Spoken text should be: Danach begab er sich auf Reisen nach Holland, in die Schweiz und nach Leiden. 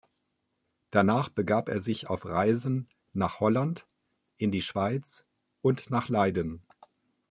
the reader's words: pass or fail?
pass